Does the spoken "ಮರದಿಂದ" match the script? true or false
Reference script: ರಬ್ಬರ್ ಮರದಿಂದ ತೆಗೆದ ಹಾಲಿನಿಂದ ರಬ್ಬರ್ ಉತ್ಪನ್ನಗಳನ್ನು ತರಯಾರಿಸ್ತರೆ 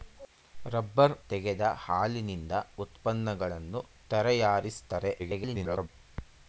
false